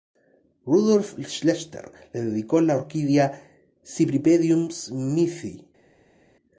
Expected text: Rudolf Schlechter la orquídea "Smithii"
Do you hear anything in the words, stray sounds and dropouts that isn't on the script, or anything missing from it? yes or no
yes